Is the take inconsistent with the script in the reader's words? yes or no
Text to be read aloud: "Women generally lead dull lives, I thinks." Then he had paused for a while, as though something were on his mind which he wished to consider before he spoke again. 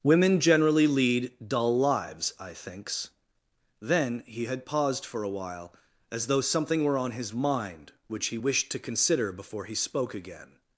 no